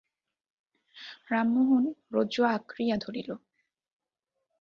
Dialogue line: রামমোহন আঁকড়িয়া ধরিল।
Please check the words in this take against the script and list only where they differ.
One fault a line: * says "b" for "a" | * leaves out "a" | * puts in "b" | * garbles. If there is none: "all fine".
* puts in "রজ্জু"